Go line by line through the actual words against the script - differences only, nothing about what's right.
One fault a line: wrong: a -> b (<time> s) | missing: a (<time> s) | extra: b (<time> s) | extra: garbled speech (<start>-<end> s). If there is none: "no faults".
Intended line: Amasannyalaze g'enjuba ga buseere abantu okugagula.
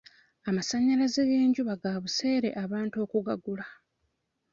no faults